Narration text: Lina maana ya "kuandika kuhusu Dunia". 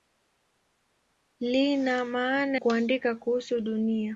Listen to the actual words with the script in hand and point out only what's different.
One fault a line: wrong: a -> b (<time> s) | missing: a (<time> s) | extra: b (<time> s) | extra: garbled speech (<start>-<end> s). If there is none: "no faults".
missing: ya (2.6 s)